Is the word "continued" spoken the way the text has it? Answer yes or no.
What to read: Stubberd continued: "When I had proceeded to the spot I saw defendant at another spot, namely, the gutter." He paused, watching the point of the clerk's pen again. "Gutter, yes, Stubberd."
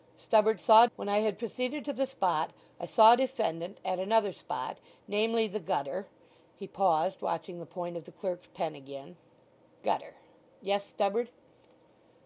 no